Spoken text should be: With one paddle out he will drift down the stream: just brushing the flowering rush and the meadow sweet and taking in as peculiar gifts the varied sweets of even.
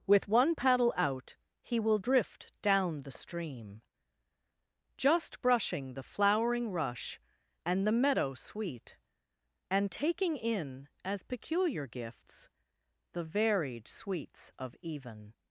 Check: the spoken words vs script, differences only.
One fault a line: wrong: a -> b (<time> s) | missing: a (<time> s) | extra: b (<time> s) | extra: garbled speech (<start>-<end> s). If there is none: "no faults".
no faults